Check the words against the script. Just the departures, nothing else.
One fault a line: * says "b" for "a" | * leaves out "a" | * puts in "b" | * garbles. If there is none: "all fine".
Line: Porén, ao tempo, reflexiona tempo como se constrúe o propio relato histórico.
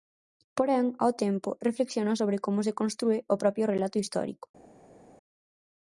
* says "sobre" for "tempo"